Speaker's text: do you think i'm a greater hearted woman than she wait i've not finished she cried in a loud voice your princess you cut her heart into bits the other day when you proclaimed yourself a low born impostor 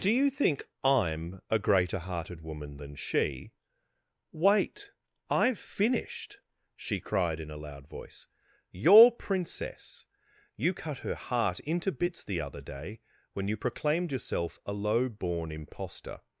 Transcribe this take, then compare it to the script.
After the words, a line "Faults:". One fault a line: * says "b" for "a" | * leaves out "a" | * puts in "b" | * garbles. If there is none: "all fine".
do you think i'm a greater hearted woman than she wait i've finished she cried in a loud voice your princess you cut her heart into bits the other day when you proclaimed yourself a low born impostor
Faults:
* leaves out "not"